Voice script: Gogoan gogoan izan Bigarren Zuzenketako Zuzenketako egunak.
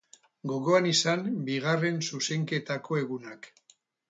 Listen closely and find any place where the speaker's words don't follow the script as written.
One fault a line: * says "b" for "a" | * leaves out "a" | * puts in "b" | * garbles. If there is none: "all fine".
* leaves out "gogoan"
* leaves out "Zuzenketako"